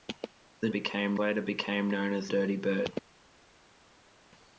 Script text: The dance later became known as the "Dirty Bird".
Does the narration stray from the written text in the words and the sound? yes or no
yes